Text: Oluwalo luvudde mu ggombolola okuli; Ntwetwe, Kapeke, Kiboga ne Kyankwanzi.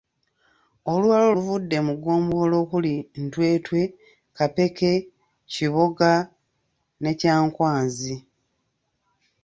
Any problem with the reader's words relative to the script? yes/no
no